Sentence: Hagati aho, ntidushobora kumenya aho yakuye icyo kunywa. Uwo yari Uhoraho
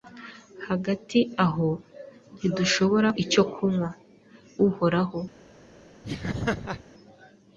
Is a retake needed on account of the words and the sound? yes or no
yes